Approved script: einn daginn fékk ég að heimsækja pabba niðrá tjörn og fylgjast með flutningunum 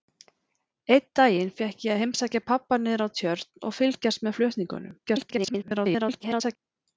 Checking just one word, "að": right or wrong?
right